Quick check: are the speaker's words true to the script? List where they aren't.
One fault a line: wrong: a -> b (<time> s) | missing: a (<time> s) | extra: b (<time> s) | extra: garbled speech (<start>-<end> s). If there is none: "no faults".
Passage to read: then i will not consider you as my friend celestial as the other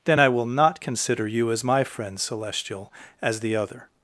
no faults